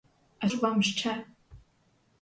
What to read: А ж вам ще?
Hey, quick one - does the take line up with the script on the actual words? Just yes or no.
yes